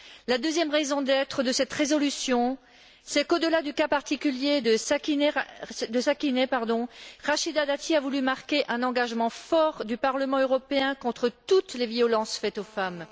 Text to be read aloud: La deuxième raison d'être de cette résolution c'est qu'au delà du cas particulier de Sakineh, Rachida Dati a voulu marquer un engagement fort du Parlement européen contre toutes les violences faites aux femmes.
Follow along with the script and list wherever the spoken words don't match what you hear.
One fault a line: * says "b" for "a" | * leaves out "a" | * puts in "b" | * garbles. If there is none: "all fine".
all fine